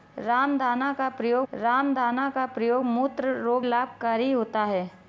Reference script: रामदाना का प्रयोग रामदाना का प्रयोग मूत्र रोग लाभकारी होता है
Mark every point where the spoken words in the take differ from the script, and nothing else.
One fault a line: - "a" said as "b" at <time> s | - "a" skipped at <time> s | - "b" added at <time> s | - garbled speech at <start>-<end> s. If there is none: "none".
none